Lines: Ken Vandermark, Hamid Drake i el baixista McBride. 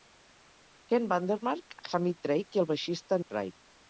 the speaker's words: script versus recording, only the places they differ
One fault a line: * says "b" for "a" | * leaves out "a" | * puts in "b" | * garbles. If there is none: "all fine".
all fine